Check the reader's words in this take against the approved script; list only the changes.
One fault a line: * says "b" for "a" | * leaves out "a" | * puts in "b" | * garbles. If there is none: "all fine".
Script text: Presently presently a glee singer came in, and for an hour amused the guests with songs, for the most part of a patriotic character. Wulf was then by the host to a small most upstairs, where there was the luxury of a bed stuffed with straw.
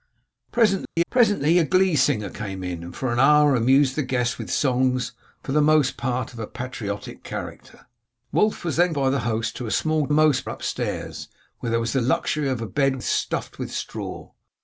all fine